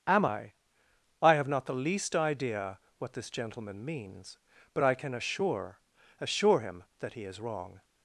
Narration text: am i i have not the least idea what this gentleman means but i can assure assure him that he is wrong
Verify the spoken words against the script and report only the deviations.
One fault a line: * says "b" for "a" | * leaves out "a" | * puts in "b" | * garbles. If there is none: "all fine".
all fine